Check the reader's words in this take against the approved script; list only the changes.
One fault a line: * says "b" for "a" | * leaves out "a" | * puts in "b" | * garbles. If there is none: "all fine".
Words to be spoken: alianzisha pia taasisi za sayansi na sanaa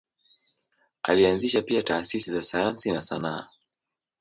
all fine